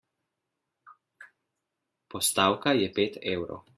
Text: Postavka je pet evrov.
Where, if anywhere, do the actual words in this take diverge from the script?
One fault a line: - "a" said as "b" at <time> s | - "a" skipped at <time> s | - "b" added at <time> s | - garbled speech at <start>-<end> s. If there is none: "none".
none